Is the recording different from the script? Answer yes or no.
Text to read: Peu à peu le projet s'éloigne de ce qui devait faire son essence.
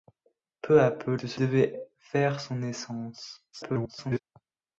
yes